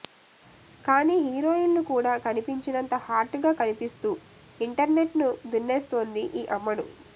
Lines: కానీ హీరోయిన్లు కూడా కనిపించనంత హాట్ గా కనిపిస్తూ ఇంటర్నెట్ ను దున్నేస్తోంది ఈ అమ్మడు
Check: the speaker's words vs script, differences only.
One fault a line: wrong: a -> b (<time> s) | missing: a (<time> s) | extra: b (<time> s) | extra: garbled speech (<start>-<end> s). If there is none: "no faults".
no faults